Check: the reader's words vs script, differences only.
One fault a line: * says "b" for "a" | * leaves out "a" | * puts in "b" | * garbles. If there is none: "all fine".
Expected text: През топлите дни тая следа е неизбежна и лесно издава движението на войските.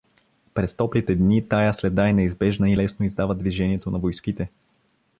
all fine